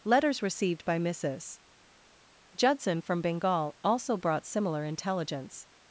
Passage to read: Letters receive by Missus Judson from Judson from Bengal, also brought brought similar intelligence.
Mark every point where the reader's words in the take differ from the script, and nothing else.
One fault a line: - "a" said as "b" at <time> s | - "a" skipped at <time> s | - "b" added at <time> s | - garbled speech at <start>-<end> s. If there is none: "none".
- "receive" said as "received" at 0.4 s
- "Judson from" skipped at 3.2 s
- "brought" skipped at 4.5 s